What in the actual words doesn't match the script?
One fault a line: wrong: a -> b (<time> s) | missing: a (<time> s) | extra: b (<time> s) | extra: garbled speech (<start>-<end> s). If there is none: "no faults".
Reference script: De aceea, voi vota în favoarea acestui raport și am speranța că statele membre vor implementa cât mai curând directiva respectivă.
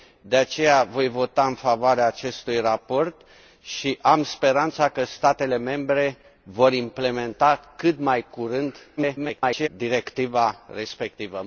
extra: garbled speech (9.0-9.7 s)